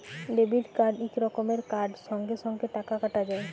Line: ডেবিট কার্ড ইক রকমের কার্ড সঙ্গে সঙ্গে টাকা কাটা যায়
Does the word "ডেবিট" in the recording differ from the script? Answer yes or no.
no